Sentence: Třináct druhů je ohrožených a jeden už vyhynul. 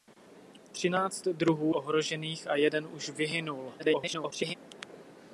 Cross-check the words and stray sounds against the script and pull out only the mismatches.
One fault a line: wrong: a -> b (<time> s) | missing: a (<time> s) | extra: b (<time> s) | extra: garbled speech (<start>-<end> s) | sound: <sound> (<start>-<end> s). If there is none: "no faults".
missing: je (1.8 s)
extra: garbled speech (3.8-4.5 s)